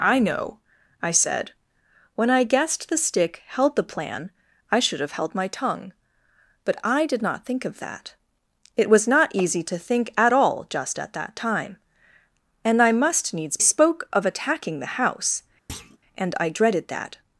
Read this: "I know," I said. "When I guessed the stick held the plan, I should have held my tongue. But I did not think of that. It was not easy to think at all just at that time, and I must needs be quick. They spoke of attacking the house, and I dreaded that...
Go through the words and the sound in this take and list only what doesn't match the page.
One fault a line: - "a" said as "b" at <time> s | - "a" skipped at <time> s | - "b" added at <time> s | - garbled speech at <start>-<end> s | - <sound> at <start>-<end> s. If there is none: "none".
- "be quick They" skipped at 13.6 s
- thud at 15.7-16.0 s